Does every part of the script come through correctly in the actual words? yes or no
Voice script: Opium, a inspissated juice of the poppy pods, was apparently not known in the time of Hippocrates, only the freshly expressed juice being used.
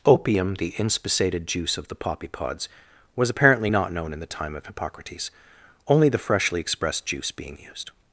no